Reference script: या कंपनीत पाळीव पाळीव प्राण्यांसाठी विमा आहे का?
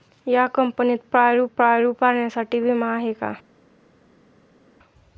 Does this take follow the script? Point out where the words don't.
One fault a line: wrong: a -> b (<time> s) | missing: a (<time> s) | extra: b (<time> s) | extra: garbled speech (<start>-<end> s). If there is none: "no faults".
no faults